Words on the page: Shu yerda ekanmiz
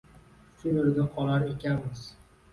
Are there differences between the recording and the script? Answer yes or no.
yes